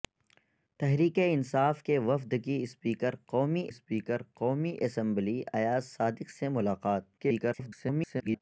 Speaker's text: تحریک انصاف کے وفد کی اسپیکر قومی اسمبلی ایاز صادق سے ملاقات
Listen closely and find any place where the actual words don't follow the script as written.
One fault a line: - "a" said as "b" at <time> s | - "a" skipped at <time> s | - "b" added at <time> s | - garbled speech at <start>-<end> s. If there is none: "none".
- "اسپیکر قومی" added at 3.7 s
- garbled speech at 7.2-8.4 s